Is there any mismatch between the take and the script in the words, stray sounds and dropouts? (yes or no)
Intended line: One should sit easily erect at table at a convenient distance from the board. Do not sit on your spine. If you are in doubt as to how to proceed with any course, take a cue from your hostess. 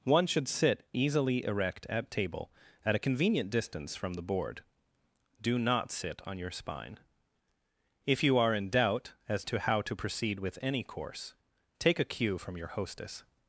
no